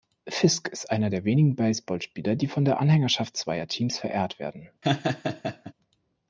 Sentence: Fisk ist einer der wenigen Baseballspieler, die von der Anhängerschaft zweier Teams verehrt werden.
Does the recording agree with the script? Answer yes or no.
yes